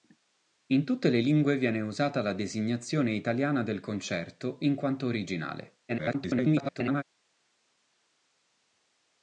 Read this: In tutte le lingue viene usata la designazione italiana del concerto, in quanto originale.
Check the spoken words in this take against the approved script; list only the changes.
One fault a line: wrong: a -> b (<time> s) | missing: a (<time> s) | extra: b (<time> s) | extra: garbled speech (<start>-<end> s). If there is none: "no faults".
extra: garbled speech (5.9-7.0 s)